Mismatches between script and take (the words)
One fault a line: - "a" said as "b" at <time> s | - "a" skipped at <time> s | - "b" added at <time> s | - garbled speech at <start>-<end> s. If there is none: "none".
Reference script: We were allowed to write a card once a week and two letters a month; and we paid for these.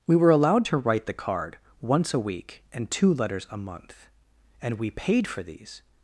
- "a" said as "the" at 1.1 s